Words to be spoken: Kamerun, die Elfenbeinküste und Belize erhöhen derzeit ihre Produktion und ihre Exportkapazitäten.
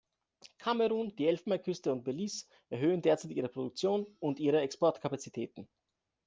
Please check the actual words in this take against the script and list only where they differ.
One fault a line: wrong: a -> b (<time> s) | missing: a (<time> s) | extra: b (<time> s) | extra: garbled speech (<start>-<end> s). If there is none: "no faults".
no faults